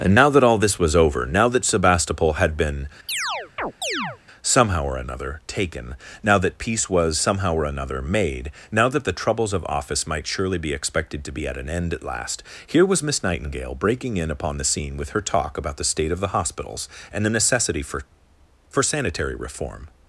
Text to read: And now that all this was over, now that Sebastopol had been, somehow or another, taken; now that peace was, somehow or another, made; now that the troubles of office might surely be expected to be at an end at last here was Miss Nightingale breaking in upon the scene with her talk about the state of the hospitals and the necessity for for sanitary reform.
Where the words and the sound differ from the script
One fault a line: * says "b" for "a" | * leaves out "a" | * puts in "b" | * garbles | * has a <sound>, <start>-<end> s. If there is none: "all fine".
* has a chirp, 3.1-4.2 s